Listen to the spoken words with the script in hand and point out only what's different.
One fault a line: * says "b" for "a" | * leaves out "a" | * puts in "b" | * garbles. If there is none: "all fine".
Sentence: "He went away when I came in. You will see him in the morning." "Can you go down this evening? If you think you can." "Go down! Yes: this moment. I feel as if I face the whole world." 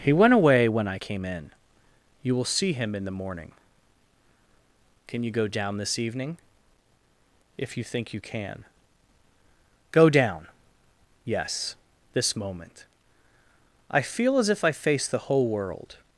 all fine